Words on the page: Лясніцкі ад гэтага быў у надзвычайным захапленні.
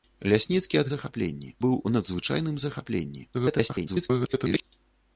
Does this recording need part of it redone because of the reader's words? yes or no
yes